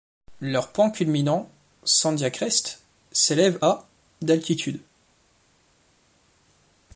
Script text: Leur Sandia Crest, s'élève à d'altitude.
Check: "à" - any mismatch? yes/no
no